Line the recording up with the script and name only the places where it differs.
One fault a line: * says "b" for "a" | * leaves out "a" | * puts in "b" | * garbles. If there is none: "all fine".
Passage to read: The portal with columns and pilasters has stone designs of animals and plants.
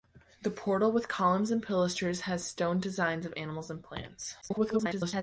* garbles